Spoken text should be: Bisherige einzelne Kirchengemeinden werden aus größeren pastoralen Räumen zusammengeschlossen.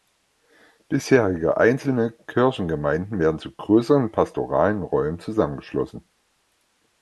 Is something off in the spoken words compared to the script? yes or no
yes